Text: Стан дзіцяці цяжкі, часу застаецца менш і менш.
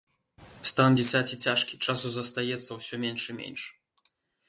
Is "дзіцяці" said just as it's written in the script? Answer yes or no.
yes